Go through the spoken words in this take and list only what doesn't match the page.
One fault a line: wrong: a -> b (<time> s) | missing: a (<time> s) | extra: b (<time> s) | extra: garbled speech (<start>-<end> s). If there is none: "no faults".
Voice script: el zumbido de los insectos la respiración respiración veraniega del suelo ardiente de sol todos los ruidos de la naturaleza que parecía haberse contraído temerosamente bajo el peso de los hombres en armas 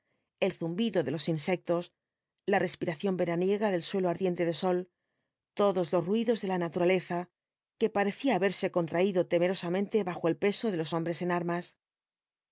missing: respiración (3.2 s)